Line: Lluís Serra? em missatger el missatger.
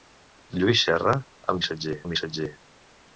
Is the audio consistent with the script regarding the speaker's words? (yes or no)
yes